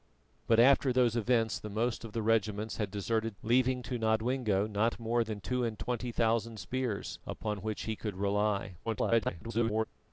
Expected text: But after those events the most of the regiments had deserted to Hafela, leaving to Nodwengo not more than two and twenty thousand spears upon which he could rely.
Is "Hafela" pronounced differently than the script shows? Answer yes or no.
yes